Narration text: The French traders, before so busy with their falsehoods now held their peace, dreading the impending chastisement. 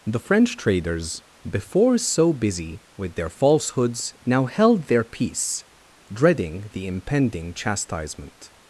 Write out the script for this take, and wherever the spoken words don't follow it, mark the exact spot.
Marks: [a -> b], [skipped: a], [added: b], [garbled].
The French traders, before so busy with their falsehoods now held their peace, dreading the impending chastisement.